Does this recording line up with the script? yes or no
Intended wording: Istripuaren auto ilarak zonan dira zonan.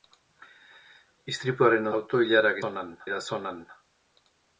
yes